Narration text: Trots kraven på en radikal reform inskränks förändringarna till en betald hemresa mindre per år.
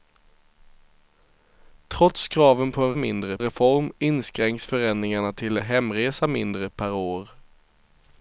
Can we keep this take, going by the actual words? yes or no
no